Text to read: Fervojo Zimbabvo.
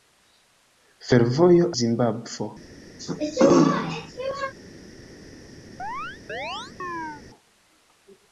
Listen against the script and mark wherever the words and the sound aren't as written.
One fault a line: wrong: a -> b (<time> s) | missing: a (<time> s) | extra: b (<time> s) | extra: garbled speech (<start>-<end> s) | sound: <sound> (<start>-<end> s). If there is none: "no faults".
sound: throat clearing (3.0-4.5 s)
sound: chirp (5.8-7.2 s)